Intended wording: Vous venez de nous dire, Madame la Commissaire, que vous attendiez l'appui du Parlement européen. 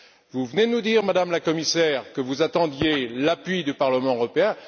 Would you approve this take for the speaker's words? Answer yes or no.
yes